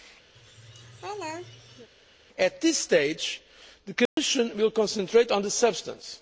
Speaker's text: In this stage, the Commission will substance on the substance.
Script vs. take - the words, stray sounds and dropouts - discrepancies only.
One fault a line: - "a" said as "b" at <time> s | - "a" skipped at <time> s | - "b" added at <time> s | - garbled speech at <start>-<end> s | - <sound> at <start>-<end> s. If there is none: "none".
- laugh at 0.3-1.9 s
- "In" said as "At" at 2.4 s
- dropout at 4.1-4.2 s
- "substance" said as "concentrate" at 4.7 s